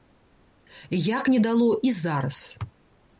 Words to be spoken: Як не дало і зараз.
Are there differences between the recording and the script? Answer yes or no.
no